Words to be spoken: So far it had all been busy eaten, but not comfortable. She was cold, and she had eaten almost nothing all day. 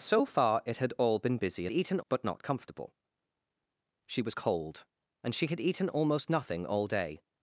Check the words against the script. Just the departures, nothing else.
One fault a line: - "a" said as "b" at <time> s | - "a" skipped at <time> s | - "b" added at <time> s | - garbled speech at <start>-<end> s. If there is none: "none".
none